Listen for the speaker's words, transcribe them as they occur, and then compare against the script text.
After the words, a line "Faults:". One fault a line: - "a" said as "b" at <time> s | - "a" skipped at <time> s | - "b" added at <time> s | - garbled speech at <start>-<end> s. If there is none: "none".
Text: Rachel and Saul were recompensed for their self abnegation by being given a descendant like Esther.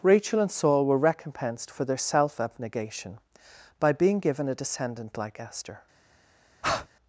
Rachel and Saul were recompensed for their self abnegation by being given a descendant like Esther.
Faults:
none